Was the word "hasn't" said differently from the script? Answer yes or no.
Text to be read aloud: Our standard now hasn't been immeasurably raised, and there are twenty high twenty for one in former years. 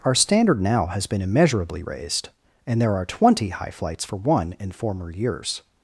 yes